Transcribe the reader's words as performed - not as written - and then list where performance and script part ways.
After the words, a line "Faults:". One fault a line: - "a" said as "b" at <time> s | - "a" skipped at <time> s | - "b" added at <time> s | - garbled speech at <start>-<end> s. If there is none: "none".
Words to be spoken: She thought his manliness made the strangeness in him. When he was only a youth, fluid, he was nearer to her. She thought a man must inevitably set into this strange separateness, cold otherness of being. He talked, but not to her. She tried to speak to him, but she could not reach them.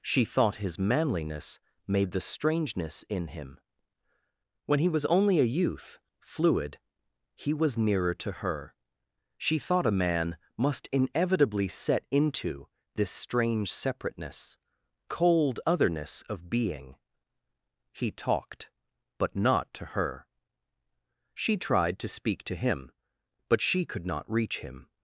She thought his manliness made the strangeness in him. When he was only a youth, fluid, he was nearer to her. She thought a man must inevitably set into this strange separateness, cold otherness of being. He talked, but not to her. She tried to speak to him, but she could not reach him.
Faults:
- "them" said as "him" at 24.6 s